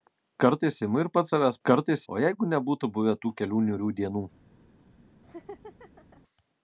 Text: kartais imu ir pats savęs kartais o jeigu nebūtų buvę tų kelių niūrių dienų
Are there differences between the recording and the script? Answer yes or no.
no